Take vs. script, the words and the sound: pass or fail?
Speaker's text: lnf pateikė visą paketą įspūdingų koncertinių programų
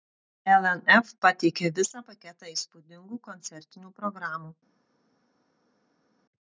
pass